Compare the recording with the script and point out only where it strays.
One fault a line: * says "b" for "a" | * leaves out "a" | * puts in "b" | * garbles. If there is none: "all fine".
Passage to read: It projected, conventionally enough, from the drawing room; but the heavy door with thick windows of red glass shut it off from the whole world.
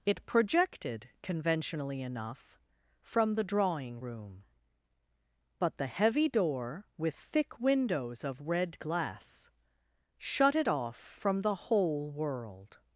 all fine